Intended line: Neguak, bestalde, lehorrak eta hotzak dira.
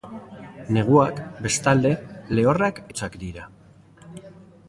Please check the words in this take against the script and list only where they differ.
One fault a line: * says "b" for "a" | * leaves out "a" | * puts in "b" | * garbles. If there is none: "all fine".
* leaves out "eta"